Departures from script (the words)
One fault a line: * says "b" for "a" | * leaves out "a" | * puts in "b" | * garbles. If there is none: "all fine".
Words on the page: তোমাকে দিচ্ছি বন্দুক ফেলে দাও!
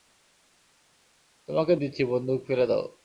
all fine